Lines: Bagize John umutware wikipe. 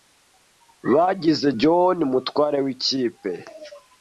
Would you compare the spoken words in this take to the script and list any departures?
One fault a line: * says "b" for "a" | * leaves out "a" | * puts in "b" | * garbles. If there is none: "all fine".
all fine